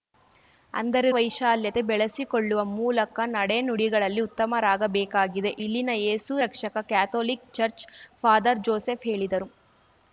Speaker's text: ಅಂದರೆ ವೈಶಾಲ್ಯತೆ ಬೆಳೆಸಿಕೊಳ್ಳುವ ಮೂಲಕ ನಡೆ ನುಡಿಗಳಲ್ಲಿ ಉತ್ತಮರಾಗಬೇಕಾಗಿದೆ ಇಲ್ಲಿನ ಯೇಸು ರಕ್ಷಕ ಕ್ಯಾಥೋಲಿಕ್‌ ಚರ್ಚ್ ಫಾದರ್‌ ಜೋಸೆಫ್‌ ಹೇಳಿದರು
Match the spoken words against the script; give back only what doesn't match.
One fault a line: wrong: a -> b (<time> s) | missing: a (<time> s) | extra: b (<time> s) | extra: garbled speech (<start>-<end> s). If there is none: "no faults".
no faults